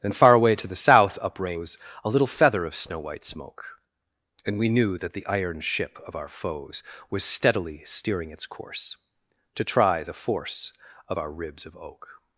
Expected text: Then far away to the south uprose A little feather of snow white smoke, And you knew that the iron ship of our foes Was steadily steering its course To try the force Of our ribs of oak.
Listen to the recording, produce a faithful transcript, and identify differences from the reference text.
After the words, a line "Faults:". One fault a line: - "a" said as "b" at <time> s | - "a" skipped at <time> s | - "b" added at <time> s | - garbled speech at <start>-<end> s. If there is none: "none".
Then far away to the south uprose A little feather of snow white smoke, And we knew that the iron ship of our foes Was steadily steering its course To try the force Of our ribs of oak.
Faults:
- "you" said as "we" at 4.6 s